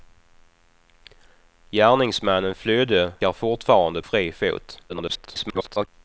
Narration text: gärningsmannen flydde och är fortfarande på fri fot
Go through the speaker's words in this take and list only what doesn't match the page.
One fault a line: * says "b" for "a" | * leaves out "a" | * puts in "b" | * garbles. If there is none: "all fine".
* leaves out "och"
* leaves out "på"
* garbles